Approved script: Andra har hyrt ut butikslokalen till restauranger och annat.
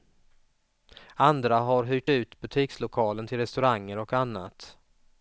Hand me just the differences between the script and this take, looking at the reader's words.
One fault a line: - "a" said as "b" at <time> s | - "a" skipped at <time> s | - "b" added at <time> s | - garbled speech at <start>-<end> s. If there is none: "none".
none